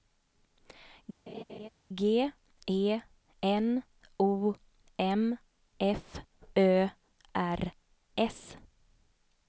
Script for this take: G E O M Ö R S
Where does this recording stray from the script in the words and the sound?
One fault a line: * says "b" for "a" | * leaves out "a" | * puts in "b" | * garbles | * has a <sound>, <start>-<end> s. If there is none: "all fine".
* has a laugh, 1.3-1.7 s
* puts in "N"
* puts in "F"